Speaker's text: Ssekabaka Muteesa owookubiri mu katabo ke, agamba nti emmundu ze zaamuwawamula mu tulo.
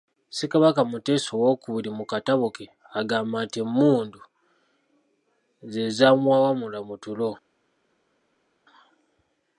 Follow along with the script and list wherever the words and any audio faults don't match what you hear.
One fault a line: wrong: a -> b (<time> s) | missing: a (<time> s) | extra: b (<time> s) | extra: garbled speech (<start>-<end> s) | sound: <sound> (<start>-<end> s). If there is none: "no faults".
no faults